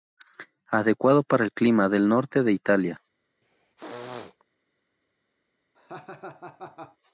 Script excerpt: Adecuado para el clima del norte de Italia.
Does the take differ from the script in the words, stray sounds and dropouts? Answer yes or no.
yes